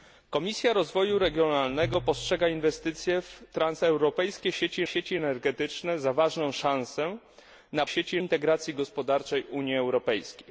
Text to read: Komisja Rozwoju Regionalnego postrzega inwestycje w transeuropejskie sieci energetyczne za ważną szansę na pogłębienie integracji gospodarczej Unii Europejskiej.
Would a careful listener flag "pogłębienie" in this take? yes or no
yes